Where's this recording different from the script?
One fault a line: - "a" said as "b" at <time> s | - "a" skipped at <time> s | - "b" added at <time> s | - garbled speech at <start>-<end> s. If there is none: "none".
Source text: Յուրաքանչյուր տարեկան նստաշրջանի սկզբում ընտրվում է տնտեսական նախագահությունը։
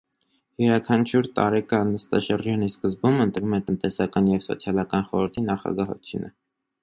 - "և սոցիալական խորհրդի" added at 4.3 s